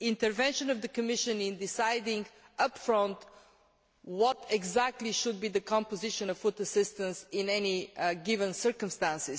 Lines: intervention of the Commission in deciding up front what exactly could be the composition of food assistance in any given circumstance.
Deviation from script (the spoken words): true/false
true